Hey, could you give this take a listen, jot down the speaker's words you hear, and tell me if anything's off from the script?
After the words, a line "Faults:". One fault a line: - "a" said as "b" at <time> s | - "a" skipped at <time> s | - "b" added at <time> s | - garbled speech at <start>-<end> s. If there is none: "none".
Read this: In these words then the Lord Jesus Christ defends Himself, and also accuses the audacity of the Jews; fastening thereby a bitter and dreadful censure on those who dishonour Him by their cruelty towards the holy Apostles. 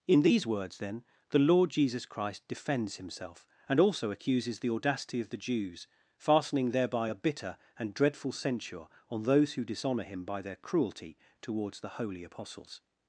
In these words then the Lord Jesus Christ defends Himself, and also accuses the audacity of the Jews; fastening thereby a bitter and dreadful censure on those who dishonour Him by their cruelty towards the holy Apostles.
Faults:
none